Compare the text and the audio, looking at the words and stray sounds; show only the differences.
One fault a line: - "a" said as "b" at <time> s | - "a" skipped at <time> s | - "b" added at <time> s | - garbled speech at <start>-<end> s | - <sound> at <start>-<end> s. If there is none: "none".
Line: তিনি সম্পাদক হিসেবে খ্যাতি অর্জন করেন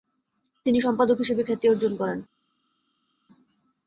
none